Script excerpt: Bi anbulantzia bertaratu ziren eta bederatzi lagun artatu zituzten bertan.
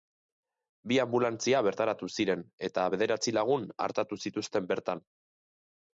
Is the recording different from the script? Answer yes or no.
no